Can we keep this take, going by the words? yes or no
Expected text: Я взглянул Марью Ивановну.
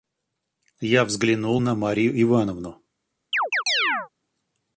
no